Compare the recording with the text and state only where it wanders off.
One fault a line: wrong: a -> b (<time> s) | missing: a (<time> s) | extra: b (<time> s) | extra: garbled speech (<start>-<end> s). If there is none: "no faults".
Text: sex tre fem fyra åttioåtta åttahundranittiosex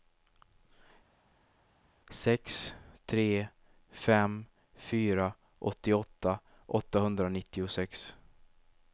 no faults